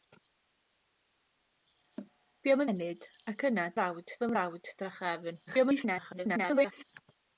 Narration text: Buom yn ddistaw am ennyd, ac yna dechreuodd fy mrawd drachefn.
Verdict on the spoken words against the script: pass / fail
fail